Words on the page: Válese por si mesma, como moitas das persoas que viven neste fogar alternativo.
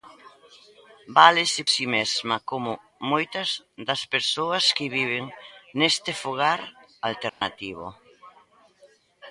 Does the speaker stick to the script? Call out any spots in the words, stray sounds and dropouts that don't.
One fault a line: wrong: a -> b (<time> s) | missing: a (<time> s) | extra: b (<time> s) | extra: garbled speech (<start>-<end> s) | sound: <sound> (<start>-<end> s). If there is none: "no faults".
missing: por (1.6 s)
sound: dropout (7.3-7.4 s)